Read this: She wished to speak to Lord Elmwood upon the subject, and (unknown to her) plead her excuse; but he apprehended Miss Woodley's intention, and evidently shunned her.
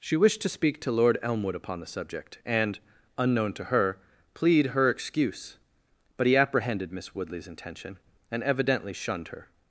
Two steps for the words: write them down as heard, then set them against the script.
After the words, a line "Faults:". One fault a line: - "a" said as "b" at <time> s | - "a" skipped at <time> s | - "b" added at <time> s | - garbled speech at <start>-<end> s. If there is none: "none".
She wished to speak to Lord Elmwood upon the subject, and (unknown to her) plead her excuse; but he apprehended Miss Woodley's intention, and evidently shunned her.
Faults:
none